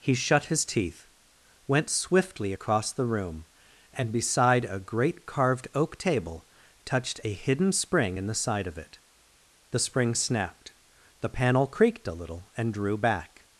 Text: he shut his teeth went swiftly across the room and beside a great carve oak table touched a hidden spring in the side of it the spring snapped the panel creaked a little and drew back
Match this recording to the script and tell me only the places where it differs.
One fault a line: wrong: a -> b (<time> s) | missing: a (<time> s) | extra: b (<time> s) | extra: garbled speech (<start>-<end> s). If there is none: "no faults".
wrong: carve -> carved (5.3 s)